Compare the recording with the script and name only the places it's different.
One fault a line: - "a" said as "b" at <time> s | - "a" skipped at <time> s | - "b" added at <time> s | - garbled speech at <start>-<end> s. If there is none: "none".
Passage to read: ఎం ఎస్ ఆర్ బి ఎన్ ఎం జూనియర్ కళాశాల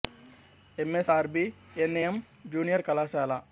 none